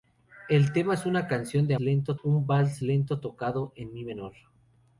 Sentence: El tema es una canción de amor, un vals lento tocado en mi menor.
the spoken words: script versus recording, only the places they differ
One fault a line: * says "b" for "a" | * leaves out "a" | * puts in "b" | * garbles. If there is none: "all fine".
* says "lento" for "amor"